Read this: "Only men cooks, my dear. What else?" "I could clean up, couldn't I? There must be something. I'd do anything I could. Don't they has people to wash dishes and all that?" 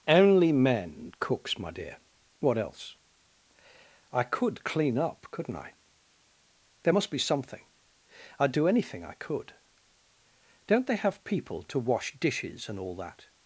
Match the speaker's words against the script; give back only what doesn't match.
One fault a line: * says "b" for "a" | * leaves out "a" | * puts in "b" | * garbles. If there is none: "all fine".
* says "have" for "has"